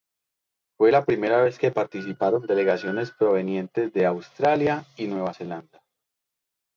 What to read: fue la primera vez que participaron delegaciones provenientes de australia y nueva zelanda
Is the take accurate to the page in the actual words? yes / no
yes